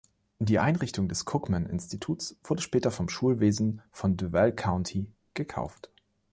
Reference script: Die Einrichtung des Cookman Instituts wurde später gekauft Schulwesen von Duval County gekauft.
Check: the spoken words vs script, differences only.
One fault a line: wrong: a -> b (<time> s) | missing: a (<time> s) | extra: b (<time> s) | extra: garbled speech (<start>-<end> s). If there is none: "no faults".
wrong: gekauft -> vom (2.9 s)